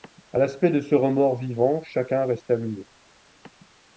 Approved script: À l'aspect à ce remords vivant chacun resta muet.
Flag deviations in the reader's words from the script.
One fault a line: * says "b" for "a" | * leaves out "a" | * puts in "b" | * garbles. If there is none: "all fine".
* says "de" for "à"